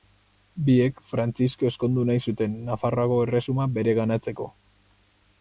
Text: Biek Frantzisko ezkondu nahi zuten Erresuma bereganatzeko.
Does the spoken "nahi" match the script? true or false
true